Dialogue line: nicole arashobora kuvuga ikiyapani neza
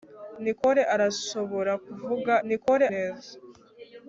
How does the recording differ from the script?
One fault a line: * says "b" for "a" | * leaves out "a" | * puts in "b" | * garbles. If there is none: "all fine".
* says "nicole" for "ikiyapani"